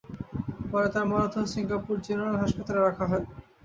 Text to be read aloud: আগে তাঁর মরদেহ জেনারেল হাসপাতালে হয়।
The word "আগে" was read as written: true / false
false